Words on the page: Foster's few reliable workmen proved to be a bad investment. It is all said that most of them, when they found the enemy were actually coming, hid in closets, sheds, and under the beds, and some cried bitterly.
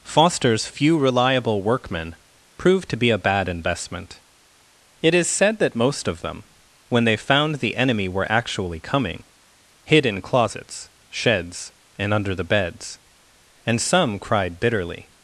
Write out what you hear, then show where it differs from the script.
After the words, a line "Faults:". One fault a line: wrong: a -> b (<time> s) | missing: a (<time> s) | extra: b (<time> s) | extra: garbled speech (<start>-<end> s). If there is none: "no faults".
Foster's few reliable workmen proved to be a bad investment. It is said that most of them, when they found the enemy were actually coming, hid in closets, sheds, and under the beds, and some cried bitterly.
Faults:
missing: all (5.3 s)